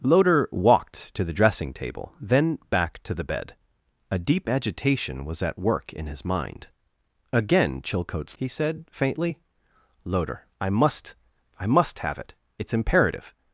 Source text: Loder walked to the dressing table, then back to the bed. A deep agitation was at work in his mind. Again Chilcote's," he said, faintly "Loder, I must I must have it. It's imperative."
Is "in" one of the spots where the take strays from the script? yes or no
no